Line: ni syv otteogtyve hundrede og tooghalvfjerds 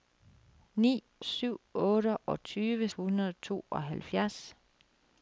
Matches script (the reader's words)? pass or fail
pass